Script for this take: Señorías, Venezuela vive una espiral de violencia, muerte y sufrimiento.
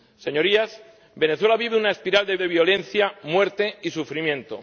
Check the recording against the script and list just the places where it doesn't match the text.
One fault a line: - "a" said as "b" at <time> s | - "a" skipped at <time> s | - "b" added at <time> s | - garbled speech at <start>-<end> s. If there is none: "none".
- "de" added at 2.4 s